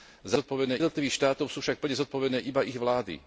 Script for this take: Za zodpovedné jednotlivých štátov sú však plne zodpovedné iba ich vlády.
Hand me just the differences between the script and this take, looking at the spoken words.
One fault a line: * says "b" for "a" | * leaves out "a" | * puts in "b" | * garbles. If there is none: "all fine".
all fine